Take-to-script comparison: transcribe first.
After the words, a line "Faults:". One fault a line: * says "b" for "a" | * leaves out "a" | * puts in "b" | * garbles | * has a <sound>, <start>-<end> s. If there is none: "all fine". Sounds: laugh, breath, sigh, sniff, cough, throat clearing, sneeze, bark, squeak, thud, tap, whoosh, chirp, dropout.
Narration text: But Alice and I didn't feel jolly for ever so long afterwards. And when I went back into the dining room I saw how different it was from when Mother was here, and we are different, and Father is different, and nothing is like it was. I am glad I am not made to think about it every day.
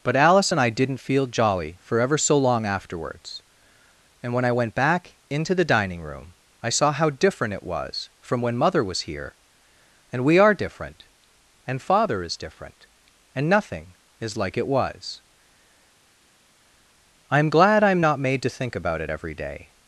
But Alice and I didn't feel jolly for ever so long afterwards. And when I went back into the dining room I saw how different it was from when Mother was here, and we are different, and Father is different, and nothing is like it was. I am glad I am not made to think about it every day.
Faults:
all fine